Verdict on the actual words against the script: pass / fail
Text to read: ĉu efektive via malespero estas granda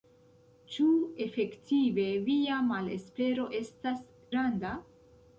pass